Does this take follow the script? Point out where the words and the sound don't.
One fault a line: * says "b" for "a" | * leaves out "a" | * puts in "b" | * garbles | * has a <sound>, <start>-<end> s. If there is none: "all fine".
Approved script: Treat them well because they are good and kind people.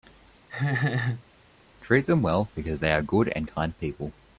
* has a laugh, 0.5-1.2 s